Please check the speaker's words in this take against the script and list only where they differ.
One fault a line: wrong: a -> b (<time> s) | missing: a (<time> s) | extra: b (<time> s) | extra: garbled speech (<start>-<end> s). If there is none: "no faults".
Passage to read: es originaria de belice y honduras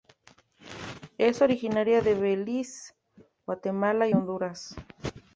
extra: guatemala (3.5 s)